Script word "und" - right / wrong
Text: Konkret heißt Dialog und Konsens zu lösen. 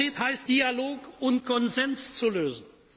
right